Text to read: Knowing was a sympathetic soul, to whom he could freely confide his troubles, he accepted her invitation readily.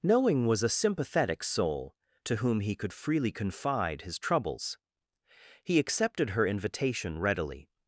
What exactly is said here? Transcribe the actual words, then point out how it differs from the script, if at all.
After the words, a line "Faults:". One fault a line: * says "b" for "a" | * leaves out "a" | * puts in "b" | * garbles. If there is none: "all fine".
Knowing was a sympathetic soul, to whom he could freely confide his troubles, he accepted her invitation readily.
Faults:
all fine